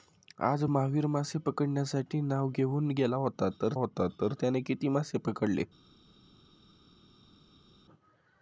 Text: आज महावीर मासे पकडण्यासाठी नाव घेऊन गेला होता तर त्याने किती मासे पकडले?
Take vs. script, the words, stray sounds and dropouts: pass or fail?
fail